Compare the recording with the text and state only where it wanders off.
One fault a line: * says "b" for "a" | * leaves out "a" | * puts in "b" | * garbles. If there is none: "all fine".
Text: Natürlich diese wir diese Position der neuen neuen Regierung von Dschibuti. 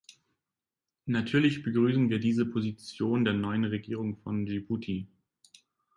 * says "begrüßen" for "diese"
* leaves out "neuen"